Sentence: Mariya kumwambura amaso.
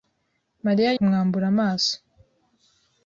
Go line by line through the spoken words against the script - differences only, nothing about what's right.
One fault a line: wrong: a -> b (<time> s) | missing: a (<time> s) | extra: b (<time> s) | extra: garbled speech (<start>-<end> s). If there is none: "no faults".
no faults